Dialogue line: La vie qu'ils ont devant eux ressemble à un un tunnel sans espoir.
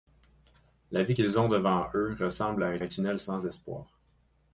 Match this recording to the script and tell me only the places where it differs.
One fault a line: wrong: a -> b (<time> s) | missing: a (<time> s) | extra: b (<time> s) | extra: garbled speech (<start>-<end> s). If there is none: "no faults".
no faults